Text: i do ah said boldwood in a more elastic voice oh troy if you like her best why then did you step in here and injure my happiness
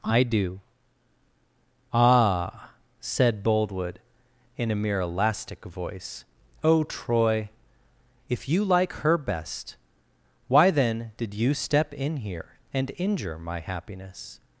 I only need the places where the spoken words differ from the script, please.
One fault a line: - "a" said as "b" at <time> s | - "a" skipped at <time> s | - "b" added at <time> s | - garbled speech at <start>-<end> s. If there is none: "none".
- "more" said as "mere" at 4.8 s